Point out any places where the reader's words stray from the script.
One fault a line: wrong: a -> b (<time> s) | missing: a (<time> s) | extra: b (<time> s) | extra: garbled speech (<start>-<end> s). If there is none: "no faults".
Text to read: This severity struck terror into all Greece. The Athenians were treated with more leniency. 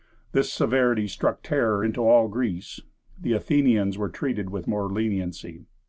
no faults